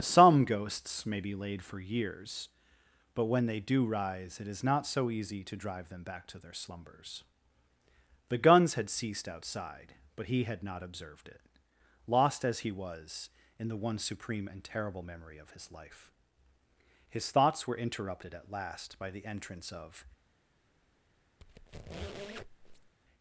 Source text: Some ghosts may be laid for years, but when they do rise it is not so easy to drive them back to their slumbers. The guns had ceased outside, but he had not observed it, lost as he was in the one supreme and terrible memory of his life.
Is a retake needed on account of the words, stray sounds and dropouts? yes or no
yes